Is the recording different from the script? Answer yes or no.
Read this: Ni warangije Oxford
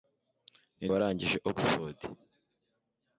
no